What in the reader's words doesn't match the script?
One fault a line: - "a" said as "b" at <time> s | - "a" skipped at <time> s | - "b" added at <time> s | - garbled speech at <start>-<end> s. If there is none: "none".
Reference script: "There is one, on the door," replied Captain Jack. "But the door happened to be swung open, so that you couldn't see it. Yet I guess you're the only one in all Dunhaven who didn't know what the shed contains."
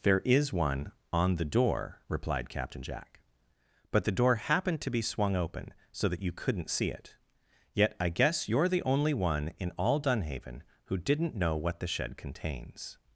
none